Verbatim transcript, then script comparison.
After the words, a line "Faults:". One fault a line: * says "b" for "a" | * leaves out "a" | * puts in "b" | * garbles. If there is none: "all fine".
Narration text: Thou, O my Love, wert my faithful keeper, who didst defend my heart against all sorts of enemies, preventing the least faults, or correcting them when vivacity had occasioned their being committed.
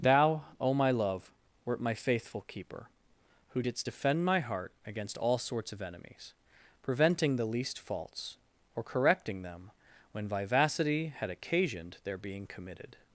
Thou, O my Love, wert my faithful keeper, who didst defend my heart against all sorts of enemies, preventing the least faults, or correcting them when vivacity had occasioned their being committed.
Faults:
all fine